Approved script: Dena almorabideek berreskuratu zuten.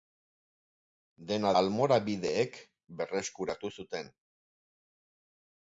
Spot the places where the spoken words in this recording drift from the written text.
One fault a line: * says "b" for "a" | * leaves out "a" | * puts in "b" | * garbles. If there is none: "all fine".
all fine